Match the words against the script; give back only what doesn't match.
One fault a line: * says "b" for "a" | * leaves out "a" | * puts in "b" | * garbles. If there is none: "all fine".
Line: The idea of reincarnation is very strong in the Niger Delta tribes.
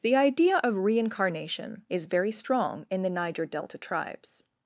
all fine